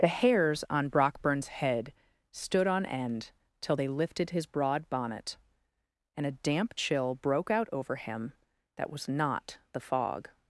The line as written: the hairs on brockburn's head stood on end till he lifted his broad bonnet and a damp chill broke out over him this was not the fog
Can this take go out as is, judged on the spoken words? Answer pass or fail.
fail